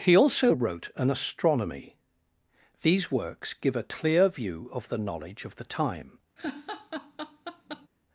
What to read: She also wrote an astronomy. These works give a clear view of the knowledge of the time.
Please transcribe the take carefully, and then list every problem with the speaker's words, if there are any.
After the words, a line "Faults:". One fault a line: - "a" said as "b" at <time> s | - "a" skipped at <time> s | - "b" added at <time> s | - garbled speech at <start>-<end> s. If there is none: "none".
He also wrote an astronomy. These works give a clear view of the knowledge of the time.
Faults:
- "She" said as "He" at 0.0 s